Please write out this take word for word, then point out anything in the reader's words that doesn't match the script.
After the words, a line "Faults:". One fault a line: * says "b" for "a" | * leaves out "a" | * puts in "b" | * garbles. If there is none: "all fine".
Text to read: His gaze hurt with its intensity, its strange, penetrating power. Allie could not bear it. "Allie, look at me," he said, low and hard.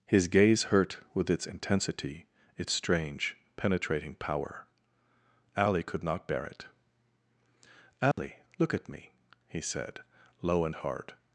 His gaze hurt with its intensity, its strange, penetrating power. Allie could not bear it. "Allie, look at me," he said, low and hard.
Faults:
all fine